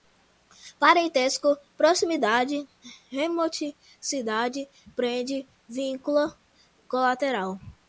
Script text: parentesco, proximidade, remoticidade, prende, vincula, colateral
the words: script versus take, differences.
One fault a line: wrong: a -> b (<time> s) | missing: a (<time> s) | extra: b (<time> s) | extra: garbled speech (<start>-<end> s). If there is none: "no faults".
no faults